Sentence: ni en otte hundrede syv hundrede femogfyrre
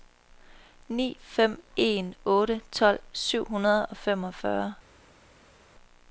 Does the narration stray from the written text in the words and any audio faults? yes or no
yes